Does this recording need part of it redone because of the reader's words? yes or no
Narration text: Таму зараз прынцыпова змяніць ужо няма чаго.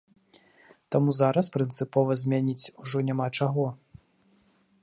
no